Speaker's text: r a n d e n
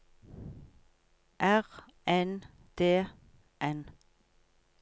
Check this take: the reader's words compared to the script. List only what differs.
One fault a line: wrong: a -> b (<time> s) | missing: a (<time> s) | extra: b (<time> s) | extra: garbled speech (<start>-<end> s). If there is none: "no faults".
missing: a (1.6 s)
missing: e (3.1 s)